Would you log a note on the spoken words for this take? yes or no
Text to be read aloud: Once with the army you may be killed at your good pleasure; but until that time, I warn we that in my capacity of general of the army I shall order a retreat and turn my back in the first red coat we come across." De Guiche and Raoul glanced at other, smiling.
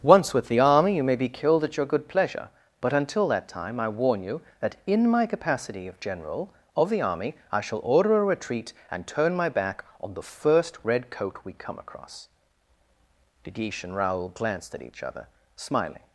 yes